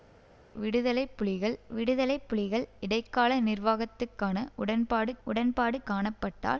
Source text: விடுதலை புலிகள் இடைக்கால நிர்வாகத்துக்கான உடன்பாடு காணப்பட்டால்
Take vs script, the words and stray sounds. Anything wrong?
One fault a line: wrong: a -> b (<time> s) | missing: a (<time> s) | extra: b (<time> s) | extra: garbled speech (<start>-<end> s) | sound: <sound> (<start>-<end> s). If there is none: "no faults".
extra: விடுதலை புலிகள் (1.7 s)
extra: உடன்பாடு (5.2 s)